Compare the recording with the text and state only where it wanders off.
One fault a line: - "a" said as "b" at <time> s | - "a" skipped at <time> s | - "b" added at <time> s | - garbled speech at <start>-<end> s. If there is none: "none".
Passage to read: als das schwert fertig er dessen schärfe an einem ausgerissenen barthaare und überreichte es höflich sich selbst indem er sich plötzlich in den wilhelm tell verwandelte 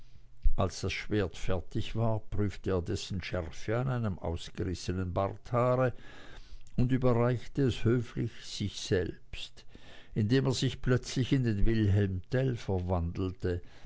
- "war prüfte" added at 1.9 s